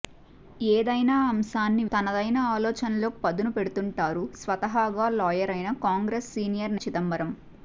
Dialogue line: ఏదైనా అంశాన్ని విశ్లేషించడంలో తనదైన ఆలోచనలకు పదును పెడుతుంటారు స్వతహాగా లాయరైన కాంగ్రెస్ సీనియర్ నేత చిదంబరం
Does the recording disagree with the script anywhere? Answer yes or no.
yes